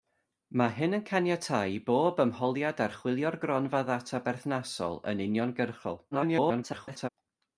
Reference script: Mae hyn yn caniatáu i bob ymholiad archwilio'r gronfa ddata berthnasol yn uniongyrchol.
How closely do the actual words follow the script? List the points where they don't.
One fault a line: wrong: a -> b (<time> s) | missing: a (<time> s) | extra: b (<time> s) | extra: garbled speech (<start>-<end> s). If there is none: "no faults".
extra: garbled speech (6.1-7.1 s)